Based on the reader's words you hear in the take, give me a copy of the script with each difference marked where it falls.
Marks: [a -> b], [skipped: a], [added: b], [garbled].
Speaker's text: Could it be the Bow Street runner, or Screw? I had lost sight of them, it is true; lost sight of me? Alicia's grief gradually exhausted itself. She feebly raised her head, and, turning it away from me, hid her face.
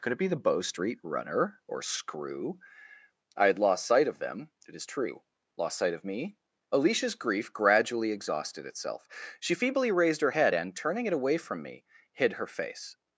Could it be the Bow Street runner, or Screw? I had lost sight of them, it is true; lost sight of me? Alicia's grief gradually exhausted itself. She feebly raised her head, and, turning it away from me, hid her face.